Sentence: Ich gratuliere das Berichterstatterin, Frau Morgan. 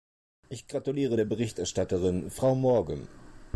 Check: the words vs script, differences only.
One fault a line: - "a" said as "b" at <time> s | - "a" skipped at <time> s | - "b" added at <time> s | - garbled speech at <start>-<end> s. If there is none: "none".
- "das" said as "der" at 1.2 s